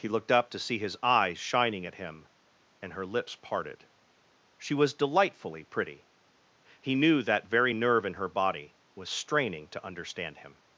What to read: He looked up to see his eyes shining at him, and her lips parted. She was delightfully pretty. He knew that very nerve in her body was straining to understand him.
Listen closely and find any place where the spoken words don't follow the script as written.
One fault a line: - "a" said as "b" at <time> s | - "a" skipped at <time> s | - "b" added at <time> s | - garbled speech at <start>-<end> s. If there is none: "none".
none